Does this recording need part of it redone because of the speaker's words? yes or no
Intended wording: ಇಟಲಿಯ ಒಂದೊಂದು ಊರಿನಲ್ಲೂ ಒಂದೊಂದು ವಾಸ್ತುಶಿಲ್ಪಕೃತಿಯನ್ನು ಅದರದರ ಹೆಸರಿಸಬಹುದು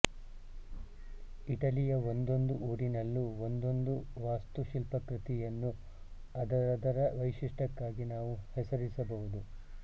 yes